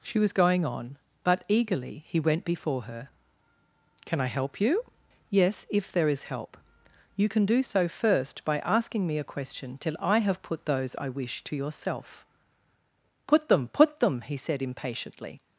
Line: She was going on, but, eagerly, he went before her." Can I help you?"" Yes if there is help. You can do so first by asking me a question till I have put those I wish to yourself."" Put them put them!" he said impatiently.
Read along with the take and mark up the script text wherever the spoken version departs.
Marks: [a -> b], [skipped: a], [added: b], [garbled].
She was going on, but, eagerly, he went before her." Can I help you?"" Yes if there is help. You can do so first by asking me a question till I have put those I wish to yourself."" Put them put them!" he said impatiently.